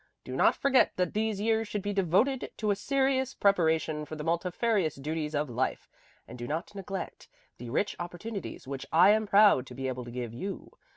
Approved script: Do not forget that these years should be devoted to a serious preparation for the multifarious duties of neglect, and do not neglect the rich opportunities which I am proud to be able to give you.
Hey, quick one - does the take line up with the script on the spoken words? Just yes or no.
no